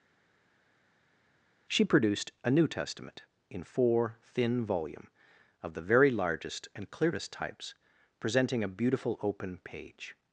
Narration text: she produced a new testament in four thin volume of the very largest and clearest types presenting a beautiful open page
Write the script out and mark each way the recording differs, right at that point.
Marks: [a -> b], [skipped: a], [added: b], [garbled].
she produced a new testament in four thin volume of the very largest and clearest types presenting a beautiful open page